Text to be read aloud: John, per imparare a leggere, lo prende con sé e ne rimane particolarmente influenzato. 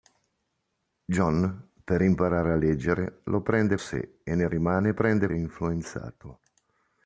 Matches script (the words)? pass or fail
fail